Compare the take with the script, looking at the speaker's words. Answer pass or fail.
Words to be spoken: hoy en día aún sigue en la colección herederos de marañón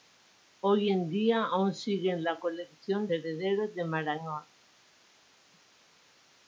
pass